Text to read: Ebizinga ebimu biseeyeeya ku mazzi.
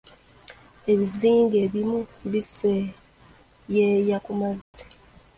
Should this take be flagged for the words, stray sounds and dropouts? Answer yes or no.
yes